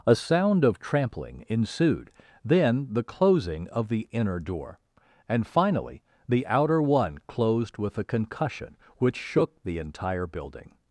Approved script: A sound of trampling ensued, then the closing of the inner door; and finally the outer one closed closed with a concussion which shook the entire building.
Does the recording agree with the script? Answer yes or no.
no